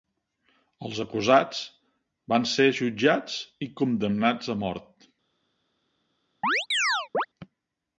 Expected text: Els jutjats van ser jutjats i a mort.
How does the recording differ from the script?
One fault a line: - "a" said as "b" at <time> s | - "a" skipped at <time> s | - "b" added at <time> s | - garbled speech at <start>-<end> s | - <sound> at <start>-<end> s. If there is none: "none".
- "jutjats" said as "acusats" at 1.0 s
- "condemnats" added at 3.8 s
- chirp at 6.4-7.3 s